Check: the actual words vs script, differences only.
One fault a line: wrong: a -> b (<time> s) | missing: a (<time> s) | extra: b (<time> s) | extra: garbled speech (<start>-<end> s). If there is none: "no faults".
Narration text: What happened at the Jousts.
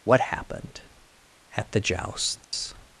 no faults